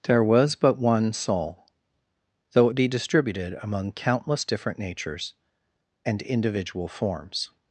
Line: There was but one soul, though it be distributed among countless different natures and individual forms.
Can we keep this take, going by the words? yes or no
yes